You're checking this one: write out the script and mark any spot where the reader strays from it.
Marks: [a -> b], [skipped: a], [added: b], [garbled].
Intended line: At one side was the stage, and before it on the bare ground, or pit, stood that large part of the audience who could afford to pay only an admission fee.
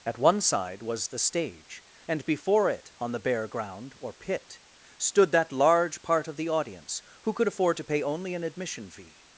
At one side was the stage, and before it on the bare ground, or pit, stood that large part of the audience who could afford to pay only an admission fee.